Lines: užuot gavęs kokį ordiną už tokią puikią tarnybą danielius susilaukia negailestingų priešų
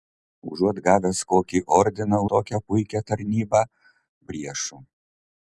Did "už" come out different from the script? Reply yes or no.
yes